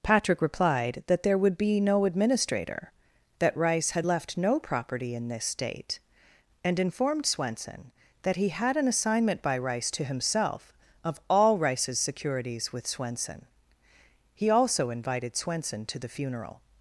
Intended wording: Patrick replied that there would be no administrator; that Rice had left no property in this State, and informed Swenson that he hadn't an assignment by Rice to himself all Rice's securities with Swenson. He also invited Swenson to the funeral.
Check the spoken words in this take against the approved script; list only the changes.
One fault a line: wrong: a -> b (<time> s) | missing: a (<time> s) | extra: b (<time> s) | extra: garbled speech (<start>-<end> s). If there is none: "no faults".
wrong: hadn't -> had (8.5 s)
extra: of (11.0 s)